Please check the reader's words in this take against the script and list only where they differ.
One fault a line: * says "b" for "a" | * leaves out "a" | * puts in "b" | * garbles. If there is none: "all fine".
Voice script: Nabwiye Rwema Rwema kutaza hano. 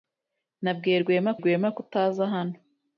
all fine